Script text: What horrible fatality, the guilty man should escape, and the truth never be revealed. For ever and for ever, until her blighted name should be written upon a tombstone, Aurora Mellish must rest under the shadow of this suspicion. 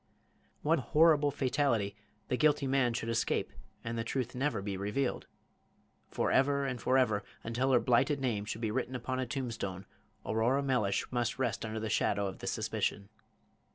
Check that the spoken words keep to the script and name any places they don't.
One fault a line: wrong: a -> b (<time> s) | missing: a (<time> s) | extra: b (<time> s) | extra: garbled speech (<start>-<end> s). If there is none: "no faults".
no faults